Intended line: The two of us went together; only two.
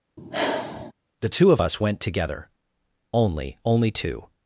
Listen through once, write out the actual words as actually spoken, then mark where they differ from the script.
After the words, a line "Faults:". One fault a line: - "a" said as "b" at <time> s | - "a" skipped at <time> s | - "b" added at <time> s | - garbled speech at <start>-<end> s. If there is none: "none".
The two of us went together; only only two.
Faults:
- "only" added at 3.7 s